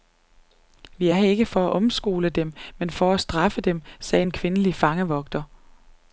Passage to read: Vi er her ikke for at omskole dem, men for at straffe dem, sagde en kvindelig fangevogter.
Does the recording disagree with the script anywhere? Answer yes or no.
no